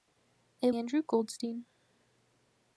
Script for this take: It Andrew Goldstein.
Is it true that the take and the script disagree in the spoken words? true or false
false